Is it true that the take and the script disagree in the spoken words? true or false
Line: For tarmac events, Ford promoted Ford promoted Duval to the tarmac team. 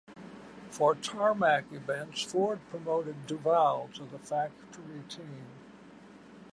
true